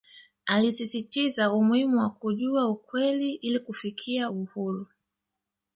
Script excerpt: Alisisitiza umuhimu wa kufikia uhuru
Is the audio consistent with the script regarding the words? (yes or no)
no